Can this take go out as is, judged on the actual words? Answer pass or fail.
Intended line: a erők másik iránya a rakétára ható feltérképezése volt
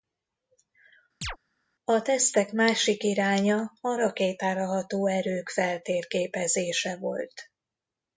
fail